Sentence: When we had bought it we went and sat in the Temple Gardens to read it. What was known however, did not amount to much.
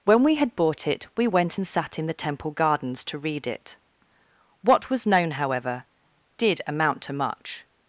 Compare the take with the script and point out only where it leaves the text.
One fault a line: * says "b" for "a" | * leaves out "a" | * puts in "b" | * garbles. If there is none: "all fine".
* leaves out "not"